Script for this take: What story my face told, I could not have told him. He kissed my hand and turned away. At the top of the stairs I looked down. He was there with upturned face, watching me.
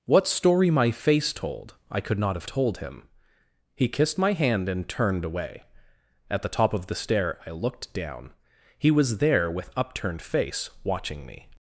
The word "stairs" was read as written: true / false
false